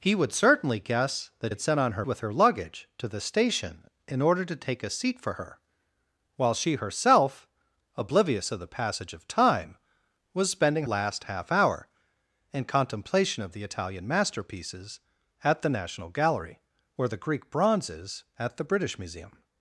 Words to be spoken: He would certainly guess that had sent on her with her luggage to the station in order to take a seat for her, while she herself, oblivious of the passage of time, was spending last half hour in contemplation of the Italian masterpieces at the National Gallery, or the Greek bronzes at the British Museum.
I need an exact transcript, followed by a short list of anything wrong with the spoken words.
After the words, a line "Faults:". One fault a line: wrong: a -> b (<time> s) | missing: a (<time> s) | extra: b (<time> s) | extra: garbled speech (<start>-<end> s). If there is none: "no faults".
He would certainly guess that had sent on her with her luggage to the station in order to take a seat for her, while she herself, oblivious of the passage of time, was spending last half hour in contemplation of the Italian masterpieces at the National Gallery, or the Greek bronzes at the British Museum.
Faults:
no faults